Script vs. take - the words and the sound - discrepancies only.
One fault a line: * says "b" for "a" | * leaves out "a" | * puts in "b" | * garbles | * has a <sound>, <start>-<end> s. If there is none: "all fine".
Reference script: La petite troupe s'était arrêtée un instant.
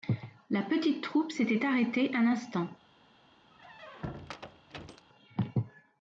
* has a squeak, 3.5-5.1 s